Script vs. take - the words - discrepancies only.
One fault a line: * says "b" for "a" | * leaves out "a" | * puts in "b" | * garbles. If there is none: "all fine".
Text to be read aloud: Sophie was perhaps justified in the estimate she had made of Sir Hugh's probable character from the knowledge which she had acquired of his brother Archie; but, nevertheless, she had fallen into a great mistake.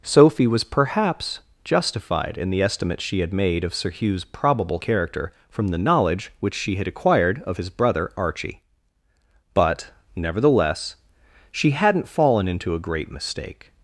* says "hadn't" for "had"